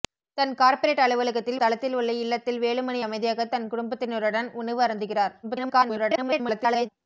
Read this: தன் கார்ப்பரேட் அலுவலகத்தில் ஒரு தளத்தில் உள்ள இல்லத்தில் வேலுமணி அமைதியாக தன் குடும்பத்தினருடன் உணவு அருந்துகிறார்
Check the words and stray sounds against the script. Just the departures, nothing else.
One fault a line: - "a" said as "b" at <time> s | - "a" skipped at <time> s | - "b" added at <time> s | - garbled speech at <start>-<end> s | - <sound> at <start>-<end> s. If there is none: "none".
- "ஒரு" skipped at 1.6 s
- garbled speech at 5.4-6.9 s